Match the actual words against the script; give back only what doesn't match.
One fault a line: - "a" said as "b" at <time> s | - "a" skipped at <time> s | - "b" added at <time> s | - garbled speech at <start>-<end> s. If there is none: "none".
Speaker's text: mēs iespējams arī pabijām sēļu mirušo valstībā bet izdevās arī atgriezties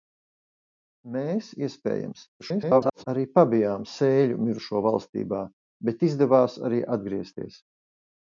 - garbled speech at 2.4-3.0 s